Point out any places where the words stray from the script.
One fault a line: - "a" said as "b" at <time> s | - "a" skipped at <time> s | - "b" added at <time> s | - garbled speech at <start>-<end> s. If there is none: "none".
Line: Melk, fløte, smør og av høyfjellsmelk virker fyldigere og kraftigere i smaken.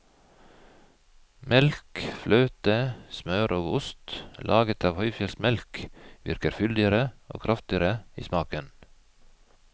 - "ost laget" added at 3.8 s